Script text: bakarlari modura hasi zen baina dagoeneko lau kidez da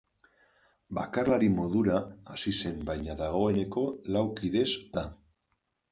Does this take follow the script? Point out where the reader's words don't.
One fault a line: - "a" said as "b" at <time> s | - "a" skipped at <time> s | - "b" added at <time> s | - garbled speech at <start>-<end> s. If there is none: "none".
none